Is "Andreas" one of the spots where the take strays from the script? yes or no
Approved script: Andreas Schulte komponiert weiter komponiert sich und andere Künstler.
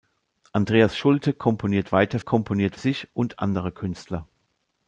no